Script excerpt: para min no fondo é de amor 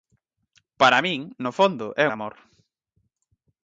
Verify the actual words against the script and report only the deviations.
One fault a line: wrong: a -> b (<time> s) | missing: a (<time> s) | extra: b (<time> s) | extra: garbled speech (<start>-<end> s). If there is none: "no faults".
no faults